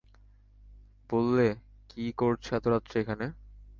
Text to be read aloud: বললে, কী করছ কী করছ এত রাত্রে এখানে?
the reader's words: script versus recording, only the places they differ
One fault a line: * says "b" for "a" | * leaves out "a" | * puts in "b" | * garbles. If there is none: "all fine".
* leaves out "কী করছ"